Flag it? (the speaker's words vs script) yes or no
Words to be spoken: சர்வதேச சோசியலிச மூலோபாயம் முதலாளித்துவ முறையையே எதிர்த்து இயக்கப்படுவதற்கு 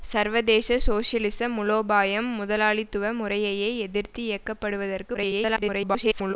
yes